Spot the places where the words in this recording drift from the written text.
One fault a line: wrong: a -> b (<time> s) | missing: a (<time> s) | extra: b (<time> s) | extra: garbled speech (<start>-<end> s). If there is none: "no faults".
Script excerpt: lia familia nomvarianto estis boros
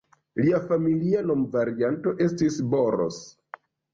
no faults